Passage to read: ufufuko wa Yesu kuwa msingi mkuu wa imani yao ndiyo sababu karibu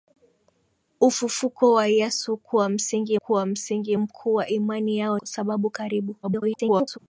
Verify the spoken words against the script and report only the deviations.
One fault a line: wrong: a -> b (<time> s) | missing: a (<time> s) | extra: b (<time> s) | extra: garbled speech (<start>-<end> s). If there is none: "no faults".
extra: kuwa msingi (3.1 s)
missing: ndiyo (5.2 s)
extra: garbled speech (6.2-7.0 s)